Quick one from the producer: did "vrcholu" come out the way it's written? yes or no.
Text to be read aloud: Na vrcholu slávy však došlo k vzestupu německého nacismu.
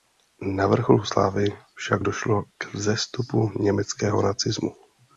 yes